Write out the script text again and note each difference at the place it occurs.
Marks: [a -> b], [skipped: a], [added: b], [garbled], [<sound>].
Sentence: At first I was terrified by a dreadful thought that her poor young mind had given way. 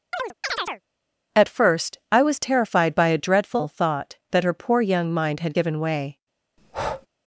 [chirp] At first I was terrified by a dreadful thought that her poor young mind had given way. [breath]